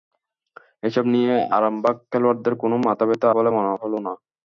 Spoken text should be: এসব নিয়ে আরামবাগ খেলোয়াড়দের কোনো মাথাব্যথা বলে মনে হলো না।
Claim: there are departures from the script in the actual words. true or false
false